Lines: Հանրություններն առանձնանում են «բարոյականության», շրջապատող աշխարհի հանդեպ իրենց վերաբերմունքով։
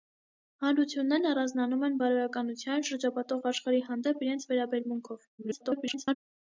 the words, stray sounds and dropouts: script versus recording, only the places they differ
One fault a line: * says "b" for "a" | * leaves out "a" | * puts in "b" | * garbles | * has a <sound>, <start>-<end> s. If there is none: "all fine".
* garbles